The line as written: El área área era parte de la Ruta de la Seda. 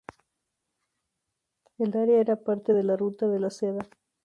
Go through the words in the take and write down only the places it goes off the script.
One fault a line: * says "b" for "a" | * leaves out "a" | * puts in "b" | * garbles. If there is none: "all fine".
* leaves out "área"